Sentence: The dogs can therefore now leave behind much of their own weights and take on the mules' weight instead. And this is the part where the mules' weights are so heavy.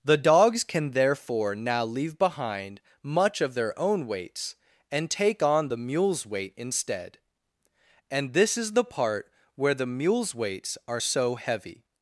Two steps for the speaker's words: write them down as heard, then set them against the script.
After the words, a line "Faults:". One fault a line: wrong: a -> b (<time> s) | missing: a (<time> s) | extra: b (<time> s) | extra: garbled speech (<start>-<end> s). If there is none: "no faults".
The dogs can therefore now leave behind much of their own weights and take on the mules' weight instead. And this is the part where the mules' weights are so heavy.
Faults:
no faults